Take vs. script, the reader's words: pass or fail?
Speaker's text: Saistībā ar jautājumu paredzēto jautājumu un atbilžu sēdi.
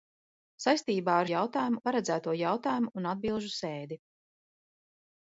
pass